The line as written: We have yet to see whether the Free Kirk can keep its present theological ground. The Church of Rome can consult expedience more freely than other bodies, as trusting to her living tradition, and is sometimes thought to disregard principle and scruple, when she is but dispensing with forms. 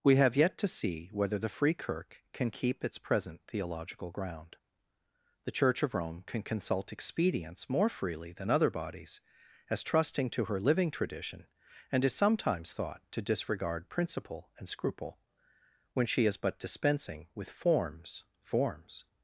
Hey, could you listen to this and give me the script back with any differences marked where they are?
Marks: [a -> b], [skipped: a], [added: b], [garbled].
We have yet to see whether the Free Kirk can keep its present theological ground. The Church of Rome can consult expedience more freely than other bodies, as trusting to her living tradition, and is sometimes thought to disregard principle and scruple, when she is but dispensing with forms. [added: forms]